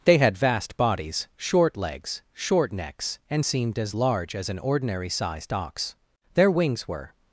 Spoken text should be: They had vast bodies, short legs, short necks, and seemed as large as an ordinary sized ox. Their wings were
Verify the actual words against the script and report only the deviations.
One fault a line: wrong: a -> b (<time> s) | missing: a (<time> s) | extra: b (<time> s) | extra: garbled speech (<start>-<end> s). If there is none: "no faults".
no faults